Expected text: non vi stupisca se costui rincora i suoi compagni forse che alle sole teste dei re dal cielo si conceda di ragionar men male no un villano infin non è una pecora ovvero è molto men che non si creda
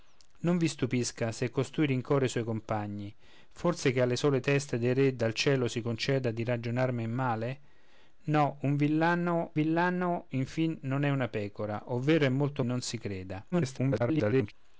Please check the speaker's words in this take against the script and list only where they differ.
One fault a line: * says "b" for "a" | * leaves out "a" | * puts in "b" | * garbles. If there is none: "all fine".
* puts in "villano"
* leaves out "men che"
* garbles